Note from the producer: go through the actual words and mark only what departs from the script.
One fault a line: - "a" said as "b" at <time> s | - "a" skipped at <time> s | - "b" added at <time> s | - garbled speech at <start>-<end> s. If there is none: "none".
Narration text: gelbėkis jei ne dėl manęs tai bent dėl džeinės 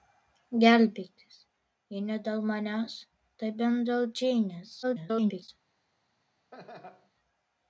- garbled speech at 4.8-5.5 s